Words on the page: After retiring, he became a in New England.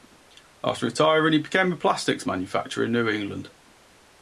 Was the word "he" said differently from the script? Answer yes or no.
no